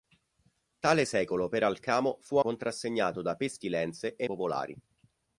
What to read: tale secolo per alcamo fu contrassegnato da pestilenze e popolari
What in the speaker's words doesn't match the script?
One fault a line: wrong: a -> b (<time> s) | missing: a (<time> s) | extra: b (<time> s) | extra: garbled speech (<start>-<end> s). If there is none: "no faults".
no faults